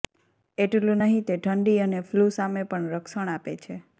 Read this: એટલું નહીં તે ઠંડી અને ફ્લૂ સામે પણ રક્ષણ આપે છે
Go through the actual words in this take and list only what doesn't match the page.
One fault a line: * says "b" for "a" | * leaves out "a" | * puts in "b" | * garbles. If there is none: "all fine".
all fine